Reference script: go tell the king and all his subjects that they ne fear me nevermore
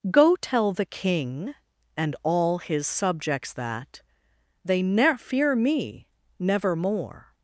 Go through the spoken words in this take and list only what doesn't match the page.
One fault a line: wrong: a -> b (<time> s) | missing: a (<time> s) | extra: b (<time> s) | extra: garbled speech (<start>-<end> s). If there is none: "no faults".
no faults